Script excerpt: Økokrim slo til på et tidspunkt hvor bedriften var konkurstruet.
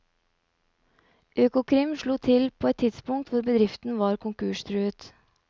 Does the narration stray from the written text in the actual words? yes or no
no